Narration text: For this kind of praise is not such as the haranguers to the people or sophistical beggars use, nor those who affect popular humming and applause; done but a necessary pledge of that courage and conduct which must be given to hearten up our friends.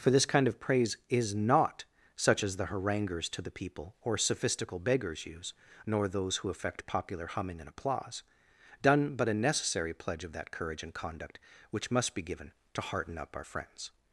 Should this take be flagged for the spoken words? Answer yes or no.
no